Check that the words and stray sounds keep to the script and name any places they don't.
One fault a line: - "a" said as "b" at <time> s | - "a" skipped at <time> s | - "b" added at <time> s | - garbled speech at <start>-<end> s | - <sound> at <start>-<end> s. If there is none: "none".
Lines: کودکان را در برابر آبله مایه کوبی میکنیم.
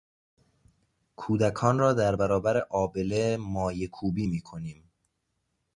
none